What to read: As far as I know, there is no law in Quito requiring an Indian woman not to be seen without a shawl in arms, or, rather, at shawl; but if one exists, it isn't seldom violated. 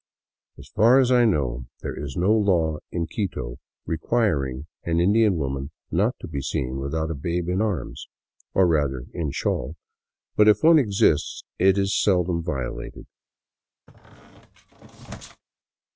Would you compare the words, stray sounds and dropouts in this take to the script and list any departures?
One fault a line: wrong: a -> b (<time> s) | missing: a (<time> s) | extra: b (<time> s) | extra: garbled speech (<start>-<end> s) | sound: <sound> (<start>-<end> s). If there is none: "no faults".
wrong: shawl -> babe (7.1 s)
wrong: at -> in (9.1 s)
wrong: isn't -> is (11.8 s)
sound: squeak (13.9-15.4 s)